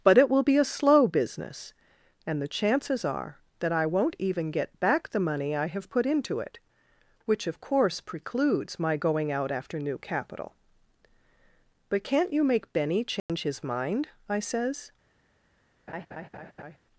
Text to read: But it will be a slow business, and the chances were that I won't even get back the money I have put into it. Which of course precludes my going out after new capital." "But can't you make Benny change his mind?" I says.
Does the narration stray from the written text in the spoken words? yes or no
yes